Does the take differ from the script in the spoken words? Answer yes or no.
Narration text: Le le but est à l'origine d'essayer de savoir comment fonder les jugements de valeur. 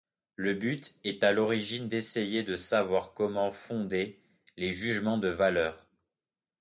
yes